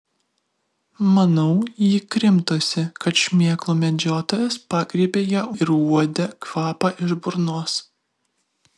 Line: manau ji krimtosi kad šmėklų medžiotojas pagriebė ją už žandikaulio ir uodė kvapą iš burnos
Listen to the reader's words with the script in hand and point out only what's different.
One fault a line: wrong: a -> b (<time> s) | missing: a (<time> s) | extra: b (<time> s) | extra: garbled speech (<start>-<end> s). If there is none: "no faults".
missing: už žandikaulio (5.5 s)